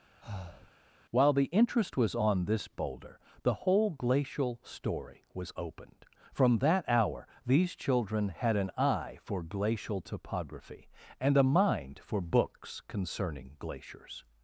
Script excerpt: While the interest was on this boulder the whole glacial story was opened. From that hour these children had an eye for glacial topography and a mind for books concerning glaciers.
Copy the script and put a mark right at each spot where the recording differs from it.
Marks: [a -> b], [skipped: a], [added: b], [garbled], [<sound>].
[breath] While the interest was on this boulder the whole glacial story was opened. From that hour these children had an eye for glacial topography and a mind for books concerning glaciers.